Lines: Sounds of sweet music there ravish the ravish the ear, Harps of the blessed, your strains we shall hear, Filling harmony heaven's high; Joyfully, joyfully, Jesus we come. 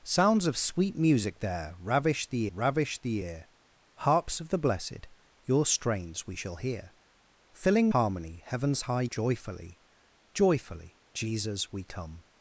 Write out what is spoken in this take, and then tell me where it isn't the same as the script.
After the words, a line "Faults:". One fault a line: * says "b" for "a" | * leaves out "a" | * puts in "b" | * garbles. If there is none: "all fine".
Sounds of sweet music there ravish the ravish the ear, Harps of the blessed, your strains we shall hear, Filling harmony heaven's high; Joyfully, joyfully, Jesus we come.
Faults:
all fine